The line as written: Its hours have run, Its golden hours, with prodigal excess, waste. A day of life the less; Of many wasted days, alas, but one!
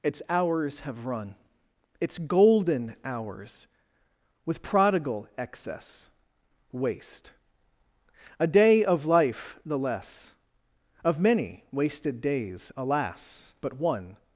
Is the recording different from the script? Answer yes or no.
no